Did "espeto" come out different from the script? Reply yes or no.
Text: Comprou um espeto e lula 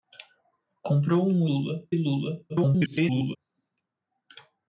yes